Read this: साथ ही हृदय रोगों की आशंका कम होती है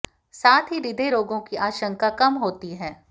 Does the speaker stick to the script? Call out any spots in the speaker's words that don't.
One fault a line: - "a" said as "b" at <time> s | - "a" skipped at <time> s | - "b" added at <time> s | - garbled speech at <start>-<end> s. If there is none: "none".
none